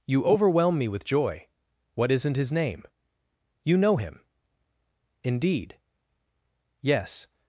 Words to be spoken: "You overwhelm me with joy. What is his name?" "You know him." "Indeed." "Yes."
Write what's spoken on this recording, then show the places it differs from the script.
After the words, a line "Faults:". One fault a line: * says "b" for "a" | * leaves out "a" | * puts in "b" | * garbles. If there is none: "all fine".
"You overwhelm me with joy. What isn't his name?" "You know him." "Indeed." "Yes."
Faults:
* says "isn't" for "is"